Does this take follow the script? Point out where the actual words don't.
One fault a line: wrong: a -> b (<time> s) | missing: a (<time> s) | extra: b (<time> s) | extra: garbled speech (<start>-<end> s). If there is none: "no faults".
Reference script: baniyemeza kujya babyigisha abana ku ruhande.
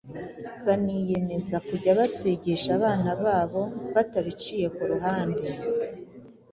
extra: babo batabiciye (3.2 s)